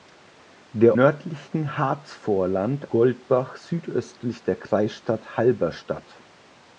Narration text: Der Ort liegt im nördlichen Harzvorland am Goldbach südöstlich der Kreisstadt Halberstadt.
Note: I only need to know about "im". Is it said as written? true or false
false